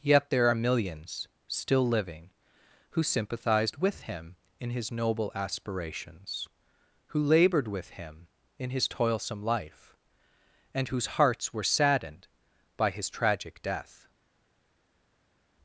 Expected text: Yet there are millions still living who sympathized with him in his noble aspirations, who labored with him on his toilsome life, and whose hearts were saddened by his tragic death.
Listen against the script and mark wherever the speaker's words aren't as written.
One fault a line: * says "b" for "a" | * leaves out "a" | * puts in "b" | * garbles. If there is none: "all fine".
* says "in" for "on"